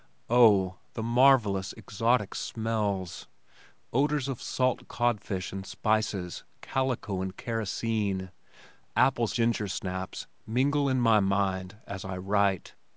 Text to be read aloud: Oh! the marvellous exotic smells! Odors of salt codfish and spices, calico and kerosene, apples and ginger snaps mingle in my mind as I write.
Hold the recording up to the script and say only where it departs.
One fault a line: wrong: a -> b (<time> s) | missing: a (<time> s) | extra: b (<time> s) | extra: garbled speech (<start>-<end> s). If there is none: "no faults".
missing: and (9.3 s)